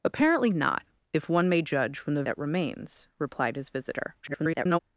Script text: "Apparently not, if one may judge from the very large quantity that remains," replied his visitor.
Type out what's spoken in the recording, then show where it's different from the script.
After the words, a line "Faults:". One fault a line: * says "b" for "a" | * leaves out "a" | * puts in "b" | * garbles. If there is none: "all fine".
"Apparently not, if one may judge from the that remains," replied his visitor. [garbled]
Faults:
* leaves out "very large quantity"
* garbles